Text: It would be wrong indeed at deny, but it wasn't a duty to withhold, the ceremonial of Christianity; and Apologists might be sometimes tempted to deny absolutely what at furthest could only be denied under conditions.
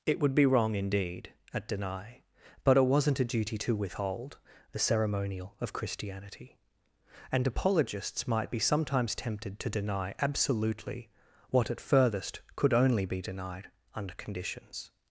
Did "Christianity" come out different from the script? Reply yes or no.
no